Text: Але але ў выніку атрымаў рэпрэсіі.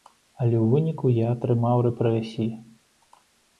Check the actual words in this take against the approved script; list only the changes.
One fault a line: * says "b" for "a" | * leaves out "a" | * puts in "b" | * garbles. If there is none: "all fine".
* leaves out "але"
* puts in "я"